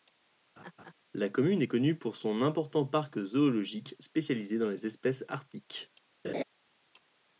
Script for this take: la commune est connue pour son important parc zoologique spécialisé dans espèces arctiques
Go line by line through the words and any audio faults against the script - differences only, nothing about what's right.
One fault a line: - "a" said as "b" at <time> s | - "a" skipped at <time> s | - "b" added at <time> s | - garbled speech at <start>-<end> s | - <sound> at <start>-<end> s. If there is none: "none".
- laugh at 0.6-0.9 s
- "les" added at 4.7 s
- laugh at 6.2-6.4 s